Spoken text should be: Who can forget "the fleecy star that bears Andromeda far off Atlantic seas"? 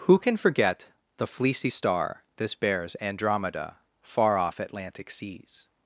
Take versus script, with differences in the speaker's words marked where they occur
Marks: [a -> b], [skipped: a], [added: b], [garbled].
Who can forget "the fleecy star [that -> this] bears Andromeda far off Atlantic seas"?